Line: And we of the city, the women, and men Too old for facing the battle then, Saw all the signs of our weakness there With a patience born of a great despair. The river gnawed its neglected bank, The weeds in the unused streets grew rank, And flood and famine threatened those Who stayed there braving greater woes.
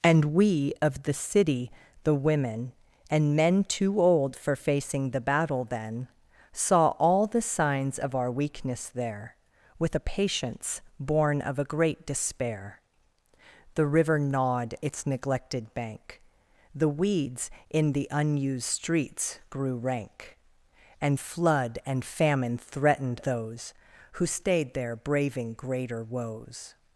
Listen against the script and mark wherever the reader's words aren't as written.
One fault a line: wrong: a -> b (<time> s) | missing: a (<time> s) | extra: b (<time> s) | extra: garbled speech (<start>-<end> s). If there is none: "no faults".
no faults